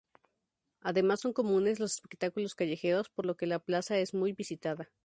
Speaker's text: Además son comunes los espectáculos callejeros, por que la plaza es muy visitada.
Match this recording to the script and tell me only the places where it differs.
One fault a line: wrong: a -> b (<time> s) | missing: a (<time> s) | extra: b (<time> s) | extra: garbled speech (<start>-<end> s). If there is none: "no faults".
extra: lo (3.3 s)